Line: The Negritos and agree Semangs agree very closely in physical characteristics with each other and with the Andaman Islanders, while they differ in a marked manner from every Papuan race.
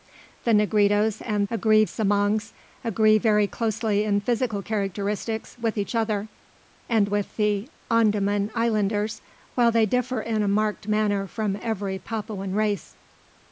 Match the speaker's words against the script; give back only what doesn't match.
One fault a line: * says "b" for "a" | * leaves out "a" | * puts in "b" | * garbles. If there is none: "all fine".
all fine